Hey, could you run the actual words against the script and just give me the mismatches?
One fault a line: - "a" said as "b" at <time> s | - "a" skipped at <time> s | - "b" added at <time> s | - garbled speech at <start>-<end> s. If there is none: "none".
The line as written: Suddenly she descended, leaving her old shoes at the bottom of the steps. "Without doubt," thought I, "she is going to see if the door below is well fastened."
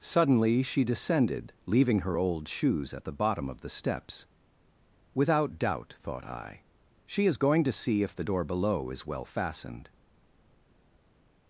none